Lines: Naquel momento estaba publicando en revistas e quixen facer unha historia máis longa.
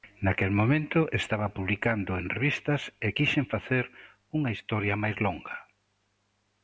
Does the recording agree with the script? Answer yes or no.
yes